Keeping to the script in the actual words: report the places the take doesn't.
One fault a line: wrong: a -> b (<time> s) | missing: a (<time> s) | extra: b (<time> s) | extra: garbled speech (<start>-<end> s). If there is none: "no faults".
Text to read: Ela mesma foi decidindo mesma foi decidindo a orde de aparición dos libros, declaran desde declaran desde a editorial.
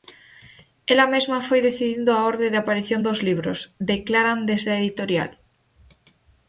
missing: mesma foi decidindo (2.1 s)
missing: declaran desde (4.7 s)